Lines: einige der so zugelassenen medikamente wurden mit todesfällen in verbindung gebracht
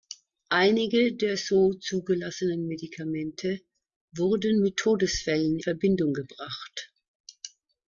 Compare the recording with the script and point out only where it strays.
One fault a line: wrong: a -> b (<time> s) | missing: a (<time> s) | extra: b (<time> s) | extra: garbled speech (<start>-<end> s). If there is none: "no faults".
missing: in (5.6 s)